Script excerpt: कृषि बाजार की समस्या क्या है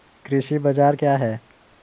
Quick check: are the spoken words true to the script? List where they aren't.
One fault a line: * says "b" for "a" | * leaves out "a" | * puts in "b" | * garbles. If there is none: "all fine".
* leaves out "की समस्या"